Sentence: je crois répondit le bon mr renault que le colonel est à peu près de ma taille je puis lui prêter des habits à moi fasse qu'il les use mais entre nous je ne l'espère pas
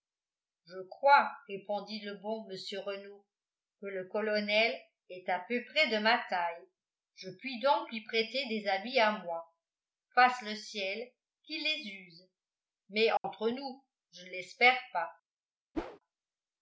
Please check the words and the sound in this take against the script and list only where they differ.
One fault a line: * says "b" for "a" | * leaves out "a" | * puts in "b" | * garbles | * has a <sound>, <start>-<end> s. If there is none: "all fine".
* puts in "donc"
* puts in "le ciel"
* has a dropout, 13.2-13.2 s
* has a whoosh, 15.7-16.0 s